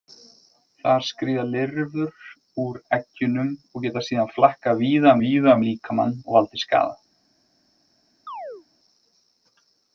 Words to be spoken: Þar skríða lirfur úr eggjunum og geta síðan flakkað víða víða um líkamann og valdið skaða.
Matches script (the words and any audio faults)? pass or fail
fail